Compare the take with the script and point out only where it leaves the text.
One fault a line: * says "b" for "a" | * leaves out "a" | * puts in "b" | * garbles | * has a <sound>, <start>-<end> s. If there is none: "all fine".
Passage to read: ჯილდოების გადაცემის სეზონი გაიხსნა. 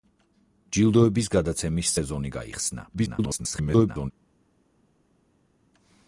* garbles